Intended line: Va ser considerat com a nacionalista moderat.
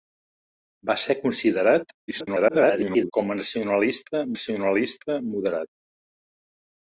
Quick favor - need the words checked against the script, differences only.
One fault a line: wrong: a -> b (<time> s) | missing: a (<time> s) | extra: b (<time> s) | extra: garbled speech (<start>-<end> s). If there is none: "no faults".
extra: garbled speech (2.1-3.1 s)
extra: nacionalista (4.3 s)